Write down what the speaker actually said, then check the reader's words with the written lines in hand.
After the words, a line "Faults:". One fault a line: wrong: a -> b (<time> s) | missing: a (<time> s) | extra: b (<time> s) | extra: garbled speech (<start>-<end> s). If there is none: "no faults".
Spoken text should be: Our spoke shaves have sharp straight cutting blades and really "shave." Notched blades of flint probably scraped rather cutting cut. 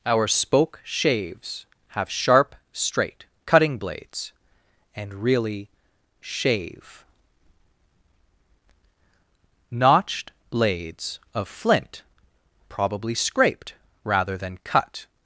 Our spoke shaves have sharp straight cutting blades and really "shave." Notched blades of flint probably scraped rather than cut.
Faults:
wrong: cutting -> than (14.4 s)